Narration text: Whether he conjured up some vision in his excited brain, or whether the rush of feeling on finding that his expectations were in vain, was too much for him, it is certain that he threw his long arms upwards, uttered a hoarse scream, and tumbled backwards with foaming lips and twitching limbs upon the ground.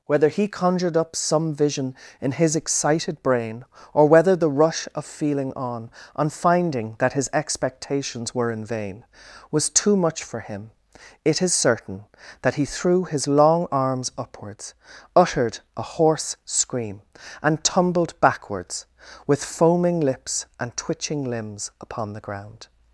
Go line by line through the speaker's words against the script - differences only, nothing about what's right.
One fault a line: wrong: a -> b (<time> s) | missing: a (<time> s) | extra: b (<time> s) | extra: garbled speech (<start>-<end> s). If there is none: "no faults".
extra: on (6.2 s)